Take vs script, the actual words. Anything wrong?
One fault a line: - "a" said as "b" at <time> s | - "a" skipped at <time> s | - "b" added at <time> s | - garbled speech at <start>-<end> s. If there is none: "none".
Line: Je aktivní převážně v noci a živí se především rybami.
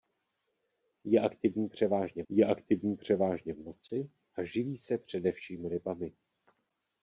- "je aktivní převážně" added at 2.3 s